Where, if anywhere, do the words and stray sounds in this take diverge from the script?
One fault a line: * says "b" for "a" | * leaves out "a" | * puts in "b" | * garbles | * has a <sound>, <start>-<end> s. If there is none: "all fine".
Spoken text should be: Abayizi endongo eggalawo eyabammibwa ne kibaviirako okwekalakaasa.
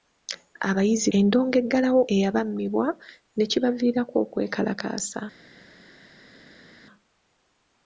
all fine